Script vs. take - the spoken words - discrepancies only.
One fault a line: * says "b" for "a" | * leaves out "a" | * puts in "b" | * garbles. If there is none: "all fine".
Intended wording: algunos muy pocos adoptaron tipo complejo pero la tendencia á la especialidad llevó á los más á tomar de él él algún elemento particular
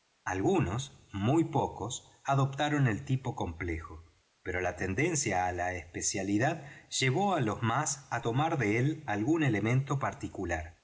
* puts in "el"
* leaves out "él"